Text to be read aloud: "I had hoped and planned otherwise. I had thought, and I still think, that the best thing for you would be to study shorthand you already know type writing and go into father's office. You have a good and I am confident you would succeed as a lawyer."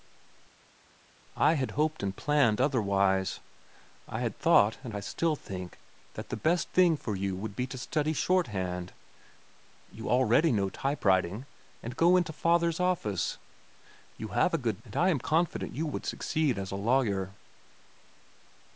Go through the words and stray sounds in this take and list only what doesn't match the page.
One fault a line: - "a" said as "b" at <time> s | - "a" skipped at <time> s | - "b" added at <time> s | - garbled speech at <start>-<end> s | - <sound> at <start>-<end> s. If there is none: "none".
none